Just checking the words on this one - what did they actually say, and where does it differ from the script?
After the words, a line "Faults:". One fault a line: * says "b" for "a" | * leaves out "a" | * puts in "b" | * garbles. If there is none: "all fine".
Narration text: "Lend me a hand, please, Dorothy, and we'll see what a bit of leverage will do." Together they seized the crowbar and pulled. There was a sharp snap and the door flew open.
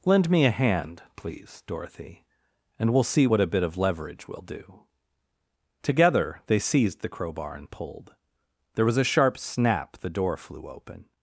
"Lend me a hand, please, Dorothy, and we'll see what a bit of leverage will do." Together they seized the crowbar and pulled. There was a sharp snap the door flew open.
Faults:
* leaves out "and"